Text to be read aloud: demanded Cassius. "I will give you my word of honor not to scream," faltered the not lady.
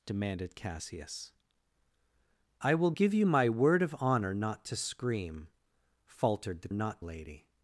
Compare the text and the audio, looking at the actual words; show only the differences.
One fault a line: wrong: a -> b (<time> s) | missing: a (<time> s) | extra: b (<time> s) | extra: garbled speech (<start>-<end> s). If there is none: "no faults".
no faults